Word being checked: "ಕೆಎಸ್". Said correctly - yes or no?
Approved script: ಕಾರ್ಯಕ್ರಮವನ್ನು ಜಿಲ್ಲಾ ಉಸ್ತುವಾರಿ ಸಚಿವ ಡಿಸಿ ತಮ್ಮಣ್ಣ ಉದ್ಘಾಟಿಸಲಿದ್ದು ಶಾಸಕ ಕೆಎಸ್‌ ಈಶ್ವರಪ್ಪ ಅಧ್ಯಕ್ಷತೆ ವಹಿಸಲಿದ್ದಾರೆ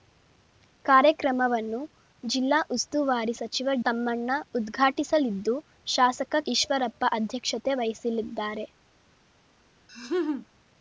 no